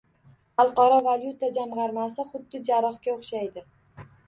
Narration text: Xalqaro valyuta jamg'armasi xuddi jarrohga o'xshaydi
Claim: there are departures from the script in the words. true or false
false